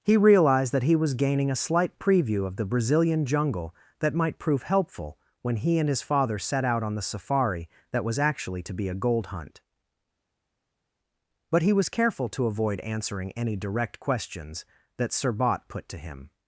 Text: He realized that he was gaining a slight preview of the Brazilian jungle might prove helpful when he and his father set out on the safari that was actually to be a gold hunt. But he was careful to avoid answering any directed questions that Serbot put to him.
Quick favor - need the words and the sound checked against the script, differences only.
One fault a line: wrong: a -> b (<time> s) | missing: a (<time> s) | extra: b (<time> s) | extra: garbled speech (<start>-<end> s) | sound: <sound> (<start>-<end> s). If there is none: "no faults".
extra: that (4.0 s)
wrong: directed -> direct (13.5 s)